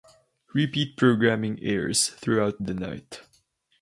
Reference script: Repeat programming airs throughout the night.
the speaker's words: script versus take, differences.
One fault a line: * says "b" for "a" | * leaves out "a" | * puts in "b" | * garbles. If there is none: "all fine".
all fine